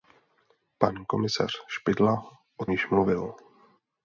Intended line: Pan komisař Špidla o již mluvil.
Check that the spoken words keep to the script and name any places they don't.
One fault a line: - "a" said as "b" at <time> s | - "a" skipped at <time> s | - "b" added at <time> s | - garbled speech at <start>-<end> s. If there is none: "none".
none